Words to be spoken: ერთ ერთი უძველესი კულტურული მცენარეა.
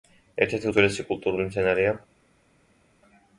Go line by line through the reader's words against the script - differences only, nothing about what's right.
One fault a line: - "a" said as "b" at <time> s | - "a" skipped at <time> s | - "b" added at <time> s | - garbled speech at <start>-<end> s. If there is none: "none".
none